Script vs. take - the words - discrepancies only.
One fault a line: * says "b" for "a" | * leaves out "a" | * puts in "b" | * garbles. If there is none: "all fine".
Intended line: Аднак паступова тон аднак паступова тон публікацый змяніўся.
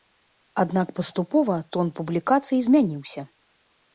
* leaves out "аднак паступова тон"